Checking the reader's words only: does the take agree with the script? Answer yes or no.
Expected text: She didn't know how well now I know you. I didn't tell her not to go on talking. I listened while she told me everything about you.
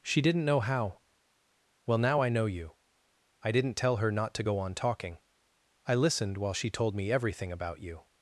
yes